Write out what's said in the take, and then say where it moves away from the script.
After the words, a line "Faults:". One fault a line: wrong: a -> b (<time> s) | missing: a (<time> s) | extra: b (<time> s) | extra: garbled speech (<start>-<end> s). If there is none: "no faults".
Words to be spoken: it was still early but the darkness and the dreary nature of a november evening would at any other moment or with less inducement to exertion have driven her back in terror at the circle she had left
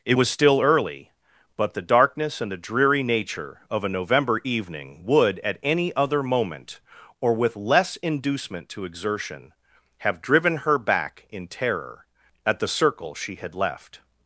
it was still early but the darkness and the dreary nature of a november evening would at any other moment or with less inducement to exertion have driven her back in terror at the circle she had left
Faults:
no faults